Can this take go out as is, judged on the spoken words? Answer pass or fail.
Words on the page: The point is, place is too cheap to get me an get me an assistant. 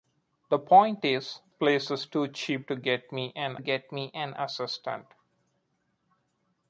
pass